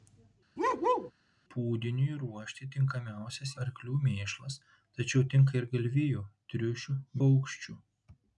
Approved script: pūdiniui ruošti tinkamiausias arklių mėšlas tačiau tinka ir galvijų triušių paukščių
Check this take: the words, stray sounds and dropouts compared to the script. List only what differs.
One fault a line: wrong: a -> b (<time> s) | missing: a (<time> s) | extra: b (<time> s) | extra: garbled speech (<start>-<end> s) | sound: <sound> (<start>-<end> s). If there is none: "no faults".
sound: bark (0.6-1.1 s)